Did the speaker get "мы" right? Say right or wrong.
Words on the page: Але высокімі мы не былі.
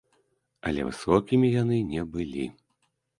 wrong